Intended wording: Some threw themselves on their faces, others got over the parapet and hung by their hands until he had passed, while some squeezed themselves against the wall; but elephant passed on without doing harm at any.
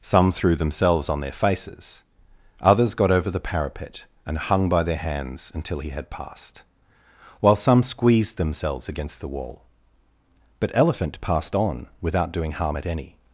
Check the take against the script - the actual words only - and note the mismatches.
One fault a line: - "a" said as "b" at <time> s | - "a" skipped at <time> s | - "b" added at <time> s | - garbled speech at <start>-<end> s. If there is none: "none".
none